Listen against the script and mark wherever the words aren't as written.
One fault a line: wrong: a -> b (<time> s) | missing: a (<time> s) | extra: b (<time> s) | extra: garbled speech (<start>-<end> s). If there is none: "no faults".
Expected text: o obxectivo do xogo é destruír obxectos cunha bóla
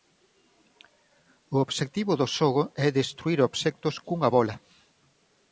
no faults